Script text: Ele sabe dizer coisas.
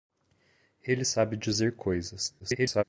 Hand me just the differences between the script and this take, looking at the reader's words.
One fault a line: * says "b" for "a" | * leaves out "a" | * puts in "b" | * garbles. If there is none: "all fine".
* garbles